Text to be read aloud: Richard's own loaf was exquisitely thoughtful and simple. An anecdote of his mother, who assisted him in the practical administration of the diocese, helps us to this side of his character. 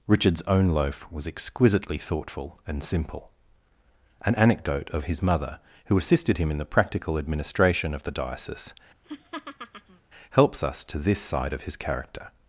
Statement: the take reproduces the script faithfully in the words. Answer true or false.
true